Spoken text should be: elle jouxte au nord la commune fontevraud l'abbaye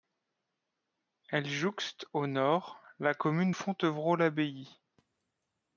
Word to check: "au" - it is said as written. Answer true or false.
true